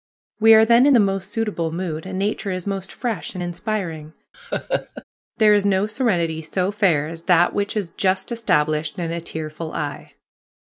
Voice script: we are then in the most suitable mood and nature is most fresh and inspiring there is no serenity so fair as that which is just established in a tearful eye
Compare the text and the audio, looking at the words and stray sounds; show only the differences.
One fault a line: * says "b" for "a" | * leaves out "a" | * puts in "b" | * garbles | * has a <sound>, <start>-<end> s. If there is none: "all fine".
* has a laugh, 4.3-5.0 s